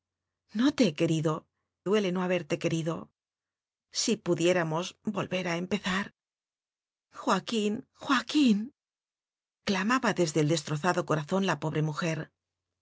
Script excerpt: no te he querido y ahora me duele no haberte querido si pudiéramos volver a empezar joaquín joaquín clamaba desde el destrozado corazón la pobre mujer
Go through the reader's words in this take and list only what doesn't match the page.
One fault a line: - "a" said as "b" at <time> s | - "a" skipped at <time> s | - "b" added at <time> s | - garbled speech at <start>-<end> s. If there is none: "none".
- "y ahora me" skipped at 1.5 s